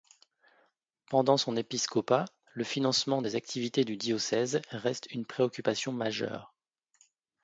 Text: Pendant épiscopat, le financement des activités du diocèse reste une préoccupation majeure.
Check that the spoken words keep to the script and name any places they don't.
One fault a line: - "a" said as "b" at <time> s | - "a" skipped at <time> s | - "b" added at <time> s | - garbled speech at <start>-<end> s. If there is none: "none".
- "son" added at 1.4 s